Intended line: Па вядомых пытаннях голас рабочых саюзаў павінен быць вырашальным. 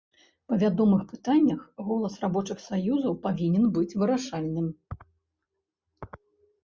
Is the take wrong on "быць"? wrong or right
right